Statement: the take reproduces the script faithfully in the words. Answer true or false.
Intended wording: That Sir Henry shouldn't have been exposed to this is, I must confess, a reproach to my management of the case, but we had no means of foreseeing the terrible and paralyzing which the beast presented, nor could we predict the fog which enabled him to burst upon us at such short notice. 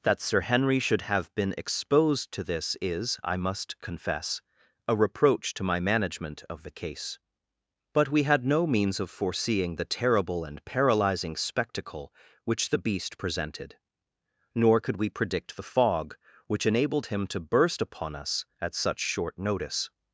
false